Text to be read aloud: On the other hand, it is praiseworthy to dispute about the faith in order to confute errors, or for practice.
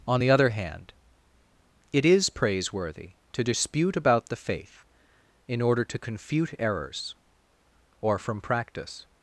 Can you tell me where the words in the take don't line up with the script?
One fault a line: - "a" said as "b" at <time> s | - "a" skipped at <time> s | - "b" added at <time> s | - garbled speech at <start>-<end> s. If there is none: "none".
- "for" said as "from" at 8.2 s